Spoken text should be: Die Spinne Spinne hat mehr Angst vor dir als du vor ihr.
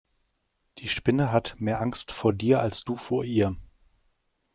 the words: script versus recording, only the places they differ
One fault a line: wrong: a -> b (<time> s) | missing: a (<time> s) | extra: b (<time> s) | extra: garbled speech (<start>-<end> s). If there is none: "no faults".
missing: Spinne (1.3 s)